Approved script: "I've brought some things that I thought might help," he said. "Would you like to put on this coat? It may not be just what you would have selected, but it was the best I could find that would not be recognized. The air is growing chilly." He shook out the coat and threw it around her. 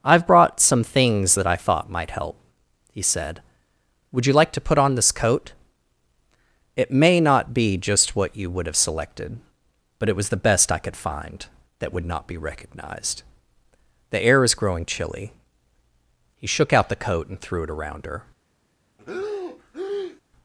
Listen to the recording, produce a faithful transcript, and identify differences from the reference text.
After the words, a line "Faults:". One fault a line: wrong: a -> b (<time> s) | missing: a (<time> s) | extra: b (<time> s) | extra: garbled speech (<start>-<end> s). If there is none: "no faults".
"I've brought some things that I thought might help," he said. "Would you like to put on this coat? It may not be just what you would have selected, but it was the best I could find that would not be recognized. The air is growing chilly." He shook out the coat and threw it around her.
Faults:
no faults